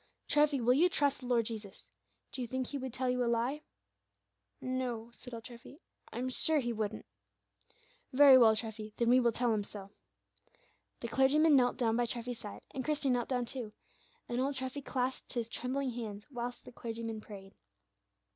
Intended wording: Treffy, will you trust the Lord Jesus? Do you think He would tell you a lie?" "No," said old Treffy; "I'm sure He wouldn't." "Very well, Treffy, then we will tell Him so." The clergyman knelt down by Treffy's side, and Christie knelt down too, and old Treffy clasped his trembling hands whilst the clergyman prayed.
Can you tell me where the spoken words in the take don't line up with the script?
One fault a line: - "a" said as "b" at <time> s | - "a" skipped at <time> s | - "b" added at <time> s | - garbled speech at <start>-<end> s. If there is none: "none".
none